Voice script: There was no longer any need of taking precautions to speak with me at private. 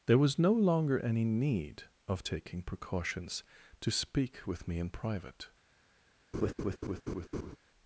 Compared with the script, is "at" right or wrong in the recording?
wrong